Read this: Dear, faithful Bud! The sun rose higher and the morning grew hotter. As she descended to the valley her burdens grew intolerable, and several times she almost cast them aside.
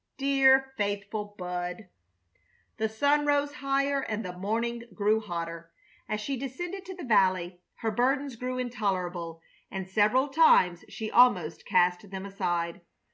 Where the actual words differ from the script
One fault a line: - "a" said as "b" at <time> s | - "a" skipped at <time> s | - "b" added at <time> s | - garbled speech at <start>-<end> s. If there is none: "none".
none